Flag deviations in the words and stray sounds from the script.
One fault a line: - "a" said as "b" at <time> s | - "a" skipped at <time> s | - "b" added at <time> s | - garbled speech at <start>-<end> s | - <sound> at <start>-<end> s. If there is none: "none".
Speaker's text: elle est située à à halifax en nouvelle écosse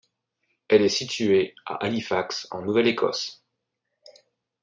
- "à" skipped at 1.8 s